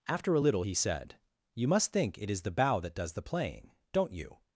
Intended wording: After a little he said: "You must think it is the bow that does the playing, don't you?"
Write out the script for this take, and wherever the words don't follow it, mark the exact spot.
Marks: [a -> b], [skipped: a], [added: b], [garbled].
After a little he said: "You must think it is the bow that does the playing, don't you?"